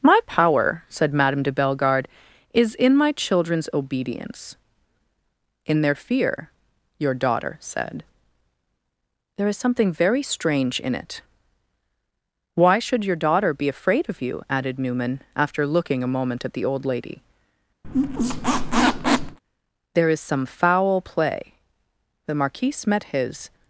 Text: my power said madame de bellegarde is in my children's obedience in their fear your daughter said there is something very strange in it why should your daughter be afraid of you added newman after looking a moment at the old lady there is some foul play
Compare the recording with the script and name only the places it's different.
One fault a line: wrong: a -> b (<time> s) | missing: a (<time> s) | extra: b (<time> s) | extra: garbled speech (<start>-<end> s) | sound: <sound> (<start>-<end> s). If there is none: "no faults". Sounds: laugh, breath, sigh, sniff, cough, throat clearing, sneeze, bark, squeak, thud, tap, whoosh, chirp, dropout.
sound: squeak (17.8-19.4 s)
extra: the marquise met his (22.3 s)